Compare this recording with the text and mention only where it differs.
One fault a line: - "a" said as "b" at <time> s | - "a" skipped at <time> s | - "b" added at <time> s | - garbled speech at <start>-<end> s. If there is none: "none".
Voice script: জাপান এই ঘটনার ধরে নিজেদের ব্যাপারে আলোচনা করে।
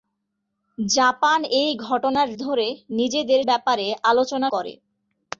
none